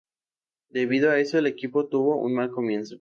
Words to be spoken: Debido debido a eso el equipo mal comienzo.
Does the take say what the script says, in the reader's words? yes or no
no